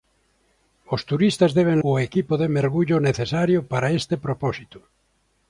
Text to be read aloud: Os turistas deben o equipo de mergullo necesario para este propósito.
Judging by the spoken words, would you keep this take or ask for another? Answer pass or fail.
pass